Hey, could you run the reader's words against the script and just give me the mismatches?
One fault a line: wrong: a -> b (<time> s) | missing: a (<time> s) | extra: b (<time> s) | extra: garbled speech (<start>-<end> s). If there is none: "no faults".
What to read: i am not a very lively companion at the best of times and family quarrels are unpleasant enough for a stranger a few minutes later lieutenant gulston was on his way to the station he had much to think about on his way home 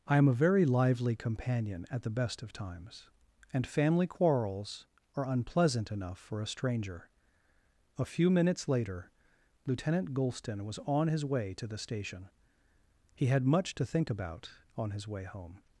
missing: not (0.3 s)